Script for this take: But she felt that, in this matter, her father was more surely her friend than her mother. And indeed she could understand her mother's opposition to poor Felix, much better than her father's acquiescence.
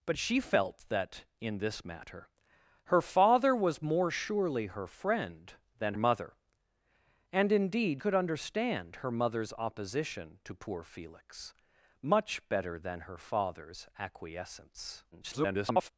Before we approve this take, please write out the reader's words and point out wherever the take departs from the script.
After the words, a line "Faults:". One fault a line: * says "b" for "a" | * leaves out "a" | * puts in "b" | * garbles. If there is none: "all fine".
But she felt that, in this matter, her father was more surely her friend than mother. And indeed could understand her mother's opposition to poor Felix, much better than her father's acquiescence. [garbled]
Faults:
* leaves out "her"
* leaves out "she"
* garbles